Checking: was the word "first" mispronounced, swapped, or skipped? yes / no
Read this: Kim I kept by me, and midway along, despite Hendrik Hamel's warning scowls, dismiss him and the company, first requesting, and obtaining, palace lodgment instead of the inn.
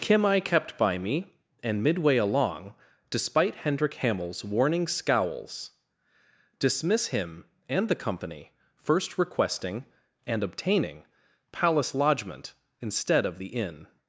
no